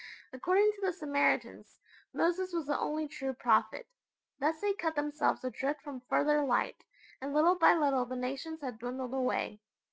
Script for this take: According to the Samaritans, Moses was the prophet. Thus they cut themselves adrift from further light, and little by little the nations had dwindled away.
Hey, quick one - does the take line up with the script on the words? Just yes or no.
no